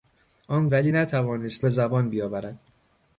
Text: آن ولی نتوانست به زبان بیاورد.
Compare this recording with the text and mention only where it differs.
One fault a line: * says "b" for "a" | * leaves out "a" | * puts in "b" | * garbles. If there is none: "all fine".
all fine